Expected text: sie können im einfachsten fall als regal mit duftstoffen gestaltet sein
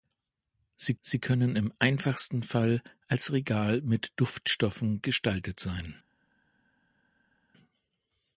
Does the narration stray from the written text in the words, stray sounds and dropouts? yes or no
yes